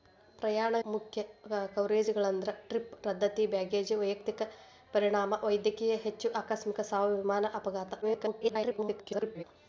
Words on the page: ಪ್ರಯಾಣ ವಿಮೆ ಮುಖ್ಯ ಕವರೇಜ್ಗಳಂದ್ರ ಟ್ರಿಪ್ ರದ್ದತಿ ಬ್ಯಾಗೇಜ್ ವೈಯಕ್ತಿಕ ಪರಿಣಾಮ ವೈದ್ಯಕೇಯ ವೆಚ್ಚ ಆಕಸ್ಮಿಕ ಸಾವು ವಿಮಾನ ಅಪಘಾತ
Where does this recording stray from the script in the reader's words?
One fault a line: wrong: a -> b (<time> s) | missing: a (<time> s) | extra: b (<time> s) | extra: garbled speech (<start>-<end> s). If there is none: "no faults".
missing: ವಿಮೆ (0.8 s)
extra: garbled speech (8.0-9.4 s)